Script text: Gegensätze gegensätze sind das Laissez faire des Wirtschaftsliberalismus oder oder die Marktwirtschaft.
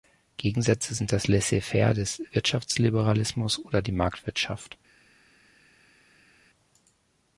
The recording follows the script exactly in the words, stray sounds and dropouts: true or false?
false